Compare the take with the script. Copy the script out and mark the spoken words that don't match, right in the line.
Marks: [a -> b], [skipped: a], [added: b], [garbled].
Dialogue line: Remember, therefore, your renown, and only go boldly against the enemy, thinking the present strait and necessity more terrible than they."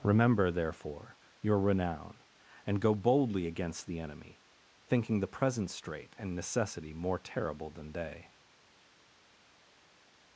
Remember, therefore, your renown, and [skipped: only] go boldly against the enemy, thinking the present strait and necessity more terrible than they."